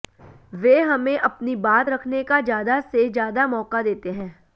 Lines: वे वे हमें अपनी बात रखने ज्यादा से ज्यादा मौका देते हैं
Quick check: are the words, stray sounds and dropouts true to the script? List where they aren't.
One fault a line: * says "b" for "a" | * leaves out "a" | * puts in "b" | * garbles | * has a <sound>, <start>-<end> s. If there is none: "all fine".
* leaves out "वे"
* puts in "का"